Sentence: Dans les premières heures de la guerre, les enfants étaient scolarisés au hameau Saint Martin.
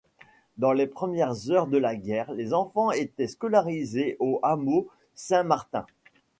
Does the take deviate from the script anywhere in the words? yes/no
no